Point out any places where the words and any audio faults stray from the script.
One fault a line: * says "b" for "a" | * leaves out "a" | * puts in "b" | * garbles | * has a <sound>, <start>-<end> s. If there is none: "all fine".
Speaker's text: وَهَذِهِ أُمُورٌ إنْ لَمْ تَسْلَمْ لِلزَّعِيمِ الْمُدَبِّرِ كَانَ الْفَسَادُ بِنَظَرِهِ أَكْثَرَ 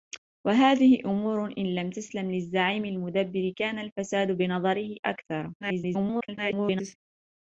* garbles